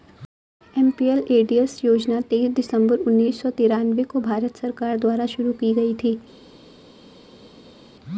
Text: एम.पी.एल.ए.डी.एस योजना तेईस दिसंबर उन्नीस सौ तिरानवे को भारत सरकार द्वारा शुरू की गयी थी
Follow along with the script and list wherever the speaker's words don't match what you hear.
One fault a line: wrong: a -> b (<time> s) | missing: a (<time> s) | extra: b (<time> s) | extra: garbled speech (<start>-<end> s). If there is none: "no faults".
no faults